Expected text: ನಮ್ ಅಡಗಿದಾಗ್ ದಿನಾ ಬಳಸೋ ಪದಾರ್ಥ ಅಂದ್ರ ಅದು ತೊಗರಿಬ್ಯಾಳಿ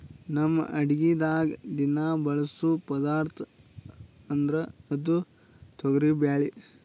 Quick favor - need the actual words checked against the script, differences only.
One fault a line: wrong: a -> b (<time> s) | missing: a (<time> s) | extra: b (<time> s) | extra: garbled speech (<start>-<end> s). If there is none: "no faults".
no faults